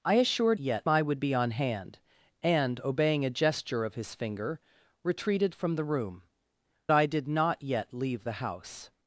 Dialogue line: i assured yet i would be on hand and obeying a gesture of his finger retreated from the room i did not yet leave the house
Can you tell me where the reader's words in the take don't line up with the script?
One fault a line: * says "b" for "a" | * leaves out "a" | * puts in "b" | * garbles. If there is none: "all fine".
all fine